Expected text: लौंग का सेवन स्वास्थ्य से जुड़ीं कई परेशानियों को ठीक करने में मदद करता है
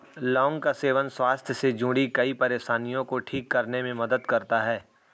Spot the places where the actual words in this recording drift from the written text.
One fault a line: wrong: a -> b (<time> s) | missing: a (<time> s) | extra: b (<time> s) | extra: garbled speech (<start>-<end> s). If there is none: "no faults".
no faults